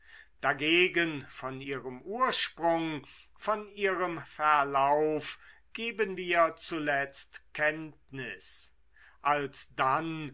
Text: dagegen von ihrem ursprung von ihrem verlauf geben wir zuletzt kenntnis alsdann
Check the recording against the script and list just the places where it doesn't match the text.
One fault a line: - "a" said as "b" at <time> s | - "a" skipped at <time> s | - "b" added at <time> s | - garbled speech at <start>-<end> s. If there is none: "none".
none